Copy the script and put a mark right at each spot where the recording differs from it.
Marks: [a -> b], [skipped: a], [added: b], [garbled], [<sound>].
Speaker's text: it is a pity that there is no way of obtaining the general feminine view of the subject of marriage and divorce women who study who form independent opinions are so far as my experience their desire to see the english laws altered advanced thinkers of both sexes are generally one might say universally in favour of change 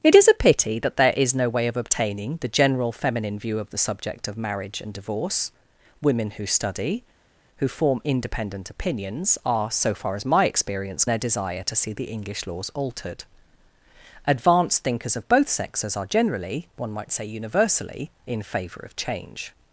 it is a pity that there is no way of obtaining the general feminine view of the subject of marriage and divorce women who study who form independent opinions are so far as my experience their desire to see the english laws altered advanced thinkers of both sexes are generally one might say universally in favour of change